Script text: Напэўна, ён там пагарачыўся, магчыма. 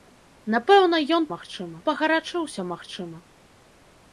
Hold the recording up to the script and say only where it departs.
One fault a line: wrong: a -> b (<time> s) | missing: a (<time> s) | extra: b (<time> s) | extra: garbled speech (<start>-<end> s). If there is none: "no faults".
wrong: там -> магчыма (1.3 s)